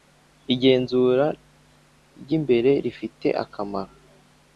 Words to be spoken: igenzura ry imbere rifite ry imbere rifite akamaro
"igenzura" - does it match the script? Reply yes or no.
yes